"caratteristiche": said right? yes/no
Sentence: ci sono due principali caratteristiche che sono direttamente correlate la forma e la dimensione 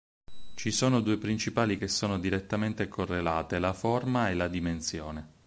no